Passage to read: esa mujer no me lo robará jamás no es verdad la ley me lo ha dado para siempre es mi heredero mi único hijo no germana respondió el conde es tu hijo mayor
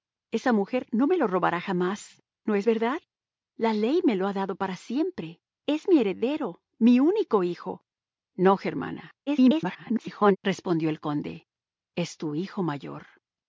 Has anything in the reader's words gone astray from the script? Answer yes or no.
yes